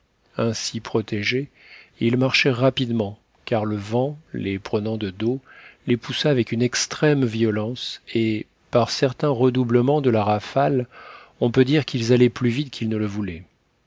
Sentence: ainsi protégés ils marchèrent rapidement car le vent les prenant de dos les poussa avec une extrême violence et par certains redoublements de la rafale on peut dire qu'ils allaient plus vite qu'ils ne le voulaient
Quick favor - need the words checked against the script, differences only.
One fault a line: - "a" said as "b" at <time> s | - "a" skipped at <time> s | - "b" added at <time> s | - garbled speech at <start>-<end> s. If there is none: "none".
none